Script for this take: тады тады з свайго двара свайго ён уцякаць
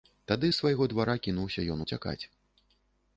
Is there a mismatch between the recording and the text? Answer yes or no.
yes